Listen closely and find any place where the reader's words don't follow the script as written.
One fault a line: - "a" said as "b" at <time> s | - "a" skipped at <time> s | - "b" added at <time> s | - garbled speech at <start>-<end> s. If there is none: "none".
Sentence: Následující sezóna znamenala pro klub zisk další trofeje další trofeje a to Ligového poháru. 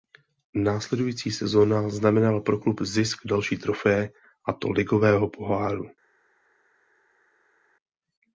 - "další trofeje" skipped at 4.1 s